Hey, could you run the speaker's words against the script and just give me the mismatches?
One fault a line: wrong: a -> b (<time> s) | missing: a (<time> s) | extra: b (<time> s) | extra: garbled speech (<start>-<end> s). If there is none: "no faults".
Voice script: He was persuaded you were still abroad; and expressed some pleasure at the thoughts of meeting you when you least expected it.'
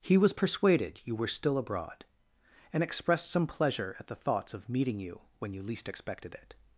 no faults